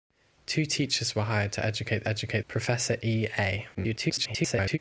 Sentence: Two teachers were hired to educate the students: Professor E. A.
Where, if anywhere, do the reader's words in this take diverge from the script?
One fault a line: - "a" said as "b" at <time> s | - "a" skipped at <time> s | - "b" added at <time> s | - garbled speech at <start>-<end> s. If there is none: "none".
- "students" said as "educate" at 2.1 s
- garbled speech at 3.7-4.8 s